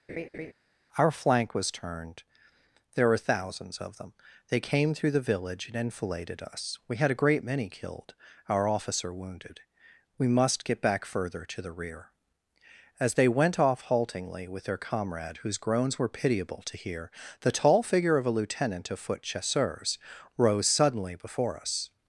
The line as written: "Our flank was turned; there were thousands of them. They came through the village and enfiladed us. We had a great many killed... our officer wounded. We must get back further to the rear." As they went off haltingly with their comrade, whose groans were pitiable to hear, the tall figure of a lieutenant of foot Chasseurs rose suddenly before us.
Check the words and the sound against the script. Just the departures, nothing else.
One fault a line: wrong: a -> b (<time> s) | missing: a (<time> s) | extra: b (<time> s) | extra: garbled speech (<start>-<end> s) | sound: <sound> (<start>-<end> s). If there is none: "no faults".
sound: laugh (0.1-0.5 s)